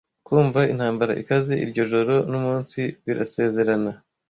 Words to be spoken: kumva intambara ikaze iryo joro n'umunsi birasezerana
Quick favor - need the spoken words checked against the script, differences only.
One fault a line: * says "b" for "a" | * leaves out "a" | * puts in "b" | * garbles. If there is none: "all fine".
all fine